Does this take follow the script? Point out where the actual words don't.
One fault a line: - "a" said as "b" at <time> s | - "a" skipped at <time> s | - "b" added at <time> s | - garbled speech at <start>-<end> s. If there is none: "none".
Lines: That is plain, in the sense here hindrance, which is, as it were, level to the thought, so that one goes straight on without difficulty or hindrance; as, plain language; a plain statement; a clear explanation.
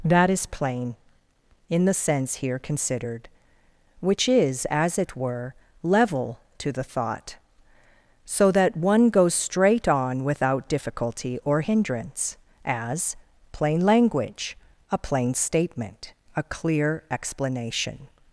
- "hindrance" said as "considered" at 2.6 s